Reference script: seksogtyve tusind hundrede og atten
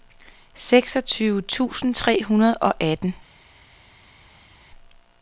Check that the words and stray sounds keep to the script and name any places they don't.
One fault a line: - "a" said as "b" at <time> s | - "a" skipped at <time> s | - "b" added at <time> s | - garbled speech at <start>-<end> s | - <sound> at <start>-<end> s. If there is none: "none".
- "tre" added at 1.9 s